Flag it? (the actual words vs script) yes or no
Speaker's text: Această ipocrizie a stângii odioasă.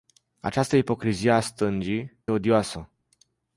no